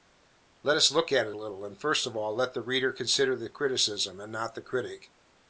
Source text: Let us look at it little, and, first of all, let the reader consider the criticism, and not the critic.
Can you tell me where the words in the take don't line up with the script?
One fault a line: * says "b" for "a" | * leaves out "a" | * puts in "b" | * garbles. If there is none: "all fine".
all fine